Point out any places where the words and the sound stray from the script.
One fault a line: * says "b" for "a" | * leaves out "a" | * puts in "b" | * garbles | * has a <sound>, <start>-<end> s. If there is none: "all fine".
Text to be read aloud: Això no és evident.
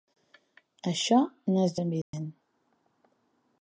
* has a dropout, 2.0-2.1 s